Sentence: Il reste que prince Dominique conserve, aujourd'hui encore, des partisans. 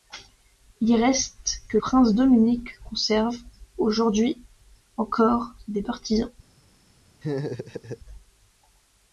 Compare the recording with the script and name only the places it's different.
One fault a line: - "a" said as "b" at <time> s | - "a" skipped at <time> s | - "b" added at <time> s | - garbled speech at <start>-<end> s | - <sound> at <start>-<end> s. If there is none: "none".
- laugh at 7.2-8.0 s